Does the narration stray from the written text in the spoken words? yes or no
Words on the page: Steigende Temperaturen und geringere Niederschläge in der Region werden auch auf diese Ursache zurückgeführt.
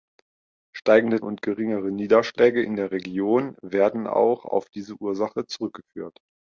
yes